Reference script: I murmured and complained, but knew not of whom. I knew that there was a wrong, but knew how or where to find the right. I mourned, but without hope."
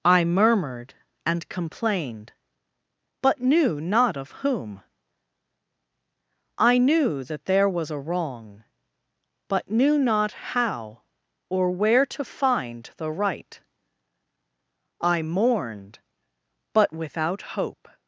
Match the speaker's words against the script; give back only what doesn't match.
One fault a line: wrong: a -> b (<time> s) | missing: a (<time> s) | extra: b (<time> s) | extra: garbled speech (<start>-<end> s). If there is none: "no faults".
extra: not (10.0 s)